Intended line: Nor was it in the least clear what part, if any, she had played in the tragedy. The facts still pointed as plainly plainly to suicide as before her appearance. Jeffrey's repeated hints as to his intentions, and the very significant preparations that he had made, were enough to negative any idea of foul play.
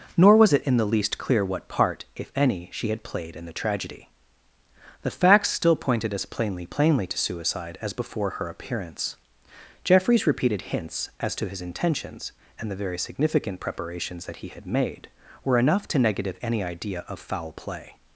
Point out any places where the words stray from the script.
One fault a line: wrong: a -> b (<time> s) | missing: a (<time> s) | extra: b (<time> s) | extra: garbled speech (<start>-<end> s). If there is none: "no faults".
no faults